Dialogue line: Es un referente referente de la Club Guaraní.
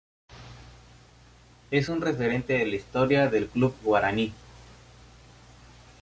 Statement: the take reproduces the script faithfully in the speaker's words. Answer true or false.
false